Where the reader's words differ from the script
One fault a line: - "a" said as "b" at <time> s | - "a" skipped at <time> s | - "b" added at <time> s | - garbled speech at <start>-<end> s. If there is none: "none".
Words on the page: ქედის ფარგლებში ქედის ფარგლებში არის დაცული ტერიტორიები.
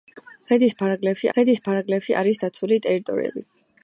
none